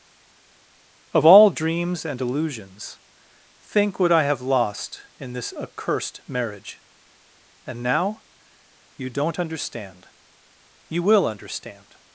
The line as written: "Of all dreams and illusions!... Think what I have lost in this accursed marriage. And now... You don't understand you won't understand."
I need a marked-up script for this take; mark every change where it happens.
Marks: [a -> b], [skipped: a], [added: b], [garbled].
"Of all dreams and illusions!... Think what I have lost in this accursed marriage. And now... You don't understand you [won't -> will] understand."